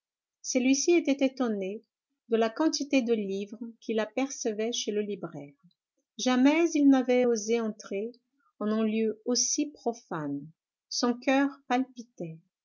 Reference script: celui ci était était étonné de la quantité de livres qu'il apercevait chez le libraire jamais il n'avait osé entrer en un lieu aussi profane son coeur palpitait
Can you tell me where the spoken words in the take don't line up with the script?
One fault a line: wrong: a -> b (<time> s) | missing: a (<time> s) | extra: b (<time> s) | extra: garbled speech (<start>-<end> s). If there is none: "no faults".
missing: était (1.2 s)